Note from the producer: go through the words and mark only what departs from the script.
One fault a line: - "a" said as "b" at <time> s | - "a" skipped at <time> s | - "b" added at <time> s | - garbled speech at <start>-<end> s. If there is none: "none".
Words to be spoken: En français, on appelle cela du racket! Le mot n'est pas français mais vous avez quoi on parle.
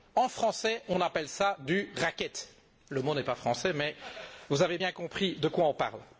- "bien compris de" added at 4.8 s